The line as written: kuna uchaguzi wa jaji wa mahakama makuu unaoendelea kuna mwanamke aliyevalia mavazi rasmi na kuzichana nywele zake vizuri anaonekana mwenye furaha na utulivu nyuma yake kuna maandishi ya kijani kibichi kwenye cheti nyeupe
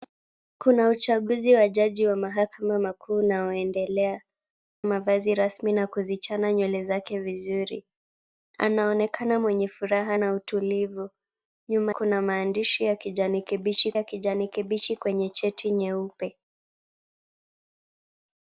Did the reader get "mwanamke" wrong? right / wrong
wrong